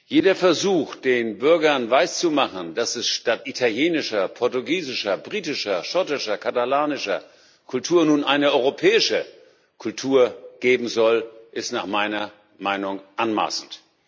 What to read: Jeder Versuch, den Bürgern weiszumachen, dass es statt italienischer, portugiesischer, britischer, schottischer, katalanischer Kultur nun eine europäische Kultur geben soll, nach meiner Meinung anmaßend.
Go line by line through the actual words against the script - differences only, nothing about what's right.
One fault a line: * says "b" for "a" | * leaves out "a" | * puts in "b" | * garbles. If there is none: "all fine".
* puts in "ist"